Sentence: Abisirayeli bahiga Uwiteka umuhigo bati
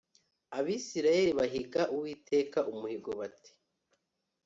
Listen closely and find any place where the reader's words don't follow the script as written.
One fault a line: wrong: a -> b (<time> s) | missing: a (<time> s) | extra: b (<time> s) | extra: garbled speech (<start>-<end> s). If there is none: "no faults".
no faults